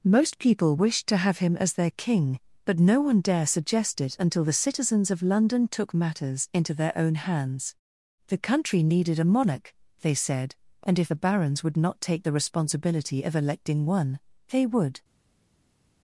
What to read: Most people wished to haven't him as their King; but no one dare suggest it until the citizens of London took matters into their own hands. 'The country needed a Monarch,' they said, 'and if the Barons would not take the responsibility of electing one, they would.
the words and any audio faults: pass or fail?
fail